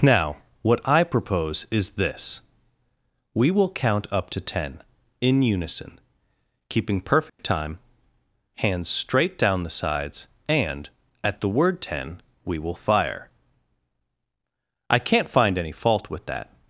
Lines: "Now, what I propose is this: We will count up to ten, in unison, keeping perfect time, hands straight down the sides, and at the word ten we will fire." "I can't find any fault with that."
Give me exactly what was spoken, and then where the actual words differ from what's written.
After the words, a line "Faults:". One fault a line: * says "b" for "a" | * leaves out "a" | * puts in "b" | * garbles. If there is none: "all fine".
"Now, what I propose is this: We will count up to ten, in unison, keeping perfect time, hands straight down the sides, and at the word ten we will fire." "I can't find any fault with that."
Faults:
all fine